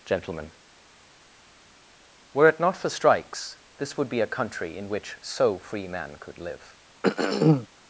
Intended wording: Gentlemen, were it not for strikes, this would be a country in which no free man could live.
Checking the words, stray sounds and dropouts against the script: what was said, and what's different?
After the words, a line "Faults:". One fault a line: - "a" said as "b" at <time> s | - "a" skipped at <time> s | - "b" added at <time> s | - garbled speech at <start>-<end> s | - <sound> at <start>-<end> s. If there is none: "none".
Gentlemen, were it not for strikes, this would be a country in which so free man could live.
Faults:
- "no" said as "so" at 5.2 s
- throat clearing at 7.0-7.7 s